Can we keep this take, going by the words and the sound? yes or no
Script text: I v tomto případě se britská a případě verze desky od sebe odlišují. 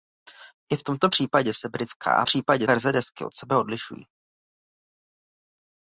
yes